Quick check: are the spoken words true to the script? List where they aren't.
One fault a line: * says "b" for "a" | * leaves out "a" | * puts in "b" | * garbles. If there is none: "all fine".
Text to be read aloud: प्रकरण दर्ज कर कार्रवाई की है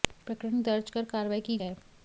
all fine